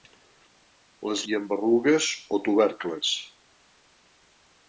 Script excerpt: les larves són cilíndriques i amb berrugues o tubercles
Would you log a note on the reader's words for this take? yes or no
yes